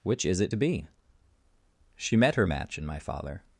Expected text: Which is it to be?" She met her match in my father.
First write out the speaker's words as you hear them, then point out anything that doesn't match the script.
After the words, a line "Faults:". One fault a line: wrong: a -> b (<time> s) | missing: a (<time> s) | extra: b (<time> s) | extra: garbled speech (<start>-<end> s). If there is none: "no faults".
Which is it to be?" She met her match in my father.
Faults:
no faults